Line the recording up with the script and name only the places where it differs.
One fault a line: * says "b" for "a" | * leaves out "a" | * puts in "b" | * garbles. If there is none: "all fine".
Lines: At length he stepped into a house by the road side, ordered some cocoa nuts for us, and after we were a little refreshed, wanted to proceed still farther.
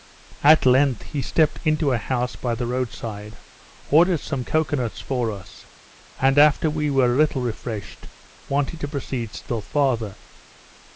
all fine